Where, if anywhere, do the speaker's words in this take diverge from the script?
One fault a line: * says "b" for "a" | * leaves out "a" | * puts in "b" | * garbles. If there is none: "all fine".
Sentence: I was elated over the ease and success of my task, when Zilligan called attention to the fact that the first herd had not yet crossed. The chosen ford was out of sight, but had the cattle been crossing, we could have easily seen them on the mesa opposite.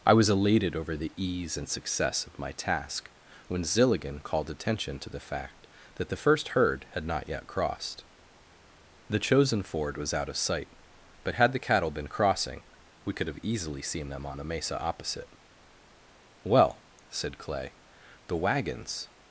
* puts in "Well said Clay the wagons"